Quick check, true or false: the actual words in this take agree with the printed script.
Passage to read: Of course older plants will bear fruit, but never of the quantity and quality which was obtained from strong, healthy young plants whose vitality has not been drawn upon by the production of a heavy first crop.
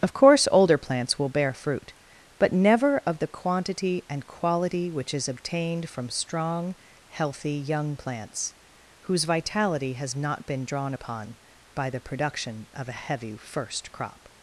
false